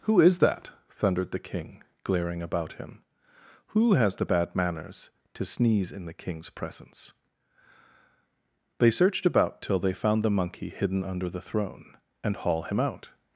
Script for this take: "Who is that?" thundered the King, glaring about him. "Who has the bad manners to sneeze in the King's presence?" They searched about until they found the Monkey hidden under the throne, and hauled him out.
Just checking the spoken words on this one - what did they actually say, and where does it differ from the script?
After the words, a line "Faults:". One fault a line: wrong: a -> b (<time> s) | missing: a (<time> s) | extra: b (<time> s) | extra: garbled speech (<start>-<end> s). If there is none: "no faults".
"Who is that?" thundered the King, glaring about him. "Who has the bad manners to sneeze in the King's presence?" They searched about till they found the Monkey hidden under the throne, and haul him out.
Faults:
wrong: until -> till (9.6 s)
wrong: hauled -> haul (12.3 s)